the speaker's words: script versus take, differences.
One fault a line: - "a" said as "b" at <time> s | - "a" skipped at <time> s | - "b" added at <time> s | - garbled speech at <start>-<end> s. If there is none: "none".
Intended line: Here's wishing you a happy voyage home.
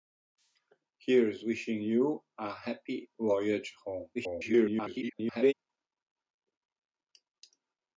- garbled speech at 4.1-5.5 s